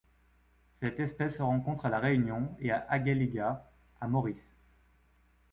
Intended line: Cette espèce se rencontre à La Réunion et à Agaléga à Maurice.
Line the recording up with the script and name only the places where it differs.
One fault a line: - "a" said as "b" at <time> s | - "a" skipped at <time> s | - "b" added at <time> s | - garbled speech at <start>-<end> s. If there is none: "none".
none